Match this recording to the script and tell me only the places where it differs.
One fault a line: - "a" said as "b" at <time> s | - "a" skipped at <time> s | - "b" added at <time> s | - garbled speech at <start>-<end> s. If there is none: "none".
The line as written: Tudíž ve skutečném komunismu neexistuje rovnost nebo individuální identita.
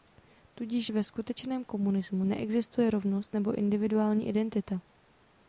none